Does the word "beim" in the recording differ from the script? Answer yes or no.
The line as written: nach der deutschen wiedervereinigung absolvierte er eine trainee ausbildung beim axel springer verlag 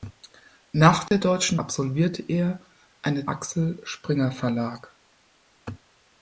yes